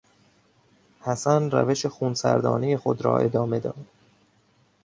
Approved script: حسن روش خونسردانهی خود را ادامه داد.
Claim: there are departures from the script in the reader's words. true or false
false